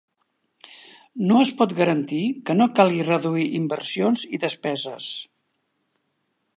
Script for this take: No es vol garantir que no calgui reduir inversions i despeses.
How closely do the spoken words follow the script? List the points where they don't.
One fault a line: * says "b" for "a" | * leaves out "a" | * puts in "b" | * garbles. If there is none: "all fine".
* says "pot" for "vol"